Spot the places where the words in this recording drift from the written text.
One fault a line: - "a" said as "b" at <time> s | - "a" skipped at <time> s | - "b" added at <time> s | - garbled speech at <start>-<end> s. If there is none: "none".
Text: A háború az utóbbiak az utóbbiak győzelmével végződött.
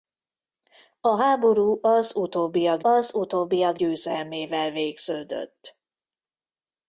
none